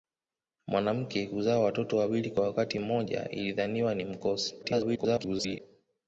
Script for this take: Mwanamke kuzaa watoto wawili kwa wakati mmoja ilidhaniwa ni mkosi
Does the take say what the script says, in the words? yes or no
no